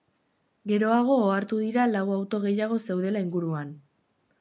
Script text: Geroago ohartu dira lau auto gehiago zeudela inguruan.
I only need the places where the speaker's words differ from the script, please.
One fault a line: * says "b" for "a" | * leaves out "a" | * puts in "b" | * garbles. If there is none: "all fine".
all fine